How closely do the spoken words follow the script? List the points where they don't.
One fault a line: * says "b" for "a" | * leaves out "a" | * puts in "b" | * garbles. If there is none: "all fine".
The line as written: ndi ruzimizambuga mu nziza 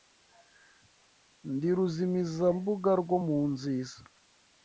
* puts in "rwo"